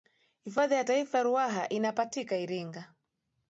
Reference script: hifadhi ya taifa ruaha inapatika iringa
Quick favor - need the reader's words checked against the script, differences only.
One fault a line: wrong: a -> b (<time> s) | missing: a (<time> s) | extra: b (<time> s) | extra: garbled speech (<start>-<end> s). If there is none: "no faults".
no faults